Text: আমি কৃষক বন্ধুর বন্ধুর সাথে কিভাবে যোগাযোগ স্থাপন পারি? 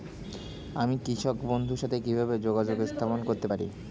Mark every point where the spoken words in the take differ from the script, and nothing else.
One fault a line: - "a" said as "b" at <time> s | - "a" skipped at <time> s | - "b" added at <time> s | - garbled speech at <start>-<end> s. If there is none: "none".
- "বন্ধুর" skipped at 1.8 s
- "করতে" added at 3.2 s